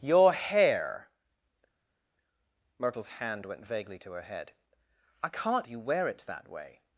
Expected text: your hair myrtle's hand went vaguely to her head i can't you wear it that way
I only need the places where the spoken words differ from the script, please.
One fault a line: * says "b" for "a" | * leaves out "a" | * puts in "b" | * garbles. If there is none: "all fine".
all fine